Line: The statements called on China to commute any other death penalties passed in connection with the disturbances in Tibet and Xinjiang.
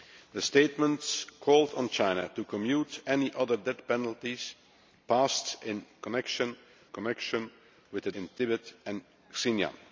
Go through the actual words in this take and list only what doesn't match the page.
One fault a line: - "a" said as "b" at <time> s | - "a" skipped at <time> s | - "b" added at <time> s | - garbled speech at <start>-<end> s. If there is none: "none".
- "connection" added at 6.9 s
- "disturbances" skipped at 8.1 s